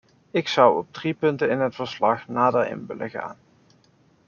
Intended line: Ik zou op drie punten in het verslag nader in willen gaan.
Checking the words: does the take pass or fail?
pass